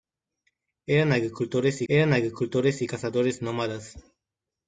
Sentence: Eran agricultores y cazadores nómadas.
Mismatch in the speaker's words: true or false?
true